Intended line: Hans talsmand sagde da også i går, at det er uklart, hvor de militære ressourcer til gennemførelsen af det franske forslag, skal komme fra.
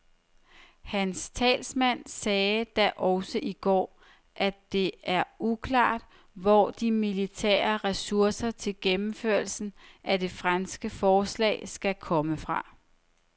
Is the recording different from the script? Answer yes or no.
no